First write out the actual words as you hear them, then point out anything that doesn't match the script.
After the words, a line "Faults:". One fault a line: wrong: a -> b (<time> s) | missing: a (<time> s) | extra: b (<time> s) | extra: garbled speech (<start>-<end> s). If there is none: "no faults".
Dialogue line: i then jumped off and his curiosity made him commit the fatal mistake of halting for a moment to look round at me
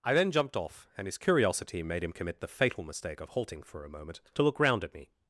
i then jumped off and his curiosity made him commit the fatal mistake of halting for a moment to look round at me
Faults:
no faults